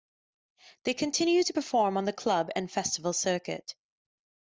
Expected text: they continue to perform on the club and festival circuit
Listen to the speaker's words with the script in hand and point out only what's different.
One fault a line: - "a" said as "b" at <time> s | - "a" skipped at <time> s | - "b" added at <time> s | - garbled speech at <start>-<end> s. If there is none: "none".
none